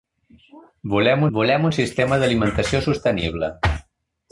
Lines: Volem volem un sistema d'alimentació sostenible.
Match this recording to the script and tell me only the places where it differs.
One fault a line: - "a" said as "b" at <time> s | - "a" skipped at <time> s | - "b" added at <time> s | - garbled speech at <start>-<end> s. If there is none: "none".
none